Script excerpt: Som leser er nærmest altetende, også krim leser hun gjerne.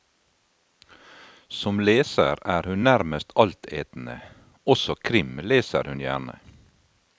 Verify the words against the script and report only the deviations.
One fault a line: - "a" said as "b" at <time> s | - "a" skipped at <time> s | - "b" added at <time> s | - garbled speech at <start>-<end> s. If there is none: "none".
- "hun" added at 2.7 s